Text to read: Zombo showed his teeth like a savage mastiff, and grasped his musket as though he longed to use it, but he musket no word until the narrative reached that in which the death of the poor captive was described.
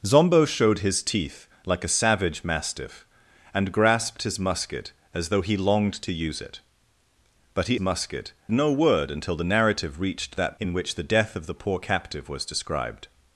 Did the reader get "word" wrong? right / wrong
right